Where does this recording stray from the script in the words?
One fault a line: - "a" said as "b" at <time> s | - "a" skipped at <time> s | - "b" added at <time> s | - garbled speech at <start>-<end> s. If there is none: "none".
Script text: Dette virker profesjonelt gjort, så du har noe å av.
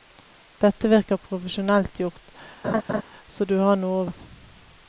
none